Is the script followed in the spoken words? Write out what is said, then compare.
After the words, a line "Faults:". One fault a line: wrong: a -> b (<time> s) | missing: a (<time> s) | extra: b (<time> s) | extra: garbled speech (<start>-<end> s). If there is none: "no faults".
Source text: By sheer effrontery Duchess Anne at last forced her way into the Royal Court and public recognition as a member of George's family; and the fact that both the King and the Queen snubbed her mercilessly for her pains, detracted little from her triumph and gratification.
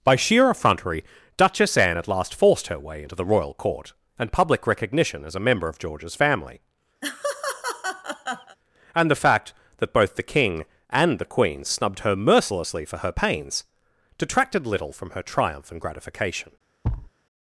By sheer effrontery Duchess Anne at last forced her way into the Royal Court and public recognition as a member of George's family; and the fact that both the King and the Queen snubbed her mercilessly for her pains, detracted little from her triumph and gratification.
Faults:
no faults